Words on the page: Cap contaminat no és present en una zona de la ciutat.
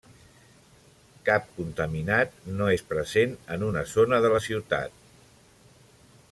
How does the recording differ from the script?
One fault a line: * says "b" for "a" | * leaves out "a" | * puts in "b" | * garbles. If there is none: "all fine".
all fine